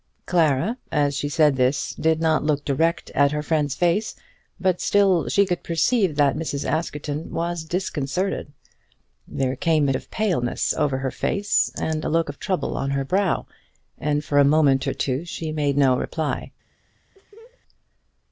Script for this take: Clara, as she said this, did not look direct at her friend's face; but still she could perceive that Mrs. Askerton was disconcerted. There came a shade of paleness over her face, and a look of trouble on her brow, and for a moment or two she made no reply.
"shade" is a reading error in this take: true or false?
true